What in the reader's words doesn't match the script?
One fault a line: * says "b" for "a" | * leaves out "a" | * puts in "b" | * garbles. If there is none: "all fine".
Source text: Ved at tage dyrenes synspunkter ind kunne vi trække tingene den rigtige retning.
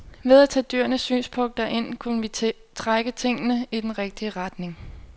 * puts in "i"